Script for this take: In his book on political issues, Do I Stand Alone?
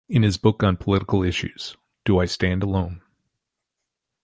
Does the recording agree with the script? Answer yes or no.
yes